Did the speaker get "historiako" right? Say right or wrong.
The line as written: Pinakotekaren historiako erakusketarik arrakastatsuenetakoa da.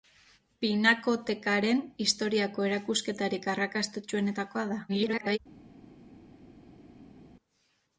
right